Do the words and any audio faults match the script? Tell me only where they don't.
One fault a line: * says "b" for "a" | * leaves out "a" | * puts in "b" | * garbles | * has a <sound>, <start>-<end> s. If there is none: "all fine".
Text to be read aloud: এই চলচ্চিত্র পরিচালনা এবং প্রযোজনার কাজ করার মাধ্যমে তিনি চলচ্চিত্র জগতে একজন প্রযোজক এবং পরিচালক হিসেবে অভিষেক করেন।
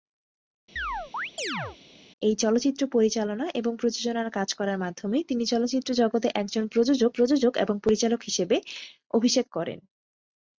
* has a chirp, 0.8-1.8 s
* puts in "প্রযোজক"